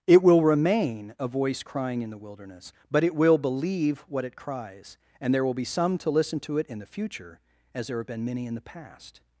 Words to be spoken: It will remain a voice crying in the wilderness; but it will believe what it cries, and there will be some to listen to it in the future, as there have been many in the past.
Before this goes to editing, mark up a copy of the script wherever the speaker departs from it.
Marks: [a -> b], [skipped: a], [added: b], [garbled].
It will remain a voice crying in the wilderness; but it will believe what it cries, and there will be some to listen to it in the future, as there have been many in the past.